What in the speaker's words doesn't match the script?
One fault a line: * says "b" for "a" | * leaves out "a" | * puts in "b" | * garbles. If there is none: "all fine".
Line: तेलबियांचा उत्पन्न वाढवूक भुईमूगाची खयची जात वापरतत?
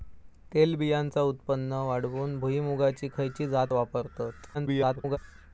* garbles